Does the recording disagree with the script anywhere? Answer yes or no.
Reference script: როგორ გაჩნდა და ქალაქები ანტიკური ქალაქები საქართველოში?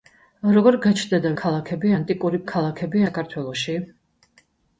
no